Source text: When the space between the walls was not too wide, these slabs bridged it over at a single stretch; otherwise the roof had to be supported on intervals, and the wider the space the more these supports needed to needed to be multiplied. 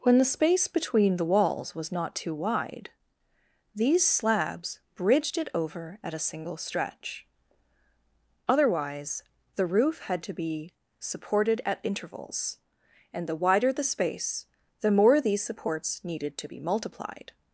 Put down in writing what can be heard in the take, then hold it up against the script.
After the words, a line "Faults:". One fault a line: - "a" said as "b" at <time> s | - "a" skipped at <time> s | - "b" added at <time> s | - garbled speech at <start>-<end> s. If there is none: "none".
When the space between the walls was not too wide, these slabs bridged it over at a single stretch; otherwise the roof had to be supported at intervals, and the wider the space the more these supports needed to be multiplied.
Faults:
- "on" said as "at" at 11.7 s
- "needed to" skipped at 16.5 s